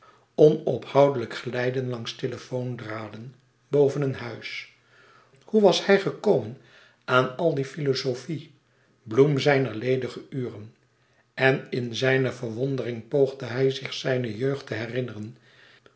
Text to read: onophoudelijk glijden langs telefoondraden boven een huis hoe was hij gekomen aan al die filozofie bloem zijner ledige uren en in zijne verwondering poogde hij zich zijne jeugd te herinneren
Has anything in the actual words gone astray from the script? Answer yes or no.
no